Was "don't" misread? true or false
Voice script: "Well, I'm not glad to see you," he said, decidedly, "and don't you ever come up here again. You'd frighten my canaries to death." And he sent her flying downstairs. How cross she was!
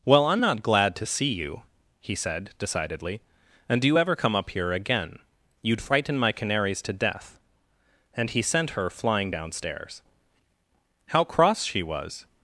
true